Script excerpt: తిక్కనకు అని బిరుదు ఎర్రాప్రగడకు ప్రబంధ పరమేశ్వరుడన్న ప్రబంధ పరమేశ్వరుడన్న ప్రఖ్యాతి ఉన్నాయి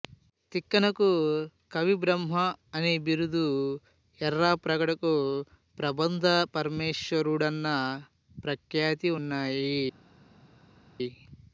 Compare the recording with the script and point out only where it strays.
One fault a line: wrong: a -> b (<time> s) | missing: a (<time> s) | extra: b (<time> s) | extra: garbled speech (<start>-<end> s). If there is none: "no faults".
extra: కవిబ్రహ్మ (1.7 s)
missing: ప్రబంధ పరమేశ్వరుడన్న (7.7 s)